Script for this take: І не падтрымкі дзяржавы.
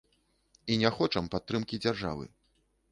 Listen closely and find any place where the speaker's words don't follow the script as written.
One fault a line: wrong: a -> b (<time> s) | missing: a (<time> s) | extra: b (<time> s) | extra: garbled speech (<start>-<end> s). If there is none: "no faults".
extra: хочам (1.0 s)